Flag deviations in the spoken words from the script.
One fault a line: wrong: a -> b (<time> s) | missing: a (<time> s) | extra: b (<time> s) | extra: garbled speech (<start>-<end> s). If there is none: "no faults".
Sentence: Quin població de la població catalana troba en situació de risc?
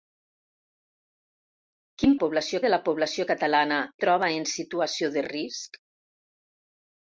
no faults